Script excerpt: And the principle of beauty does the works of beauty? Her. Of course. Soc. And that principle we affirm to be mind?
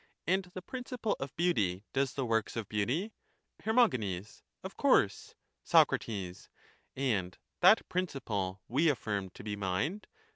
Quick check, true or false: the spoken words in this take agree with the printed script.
true